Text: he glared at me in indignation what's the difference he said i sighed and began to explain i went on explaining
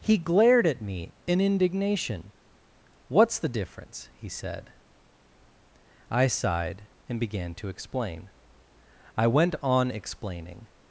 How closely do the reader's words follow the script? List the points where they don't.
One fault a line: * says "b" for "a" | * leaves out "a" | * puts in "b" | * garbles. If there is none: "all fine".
all fine